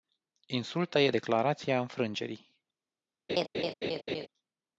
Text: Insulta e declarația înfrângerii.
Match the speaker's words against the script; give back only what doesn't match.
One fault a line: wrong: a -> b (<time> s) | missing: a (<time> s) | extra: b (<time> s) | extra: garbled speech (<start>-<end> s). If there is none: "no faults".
no faults